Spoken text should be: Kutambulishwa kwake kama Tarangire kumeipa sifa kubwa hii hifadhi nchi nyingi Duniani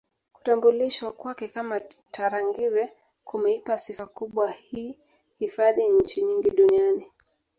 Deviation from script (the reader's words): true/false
false